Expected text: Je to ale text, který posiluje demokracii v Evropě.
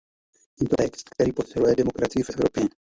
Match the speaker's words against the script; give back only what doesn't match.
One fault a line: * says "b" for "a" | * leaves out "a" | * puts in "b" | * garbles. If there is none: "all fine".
* leaves out "ale"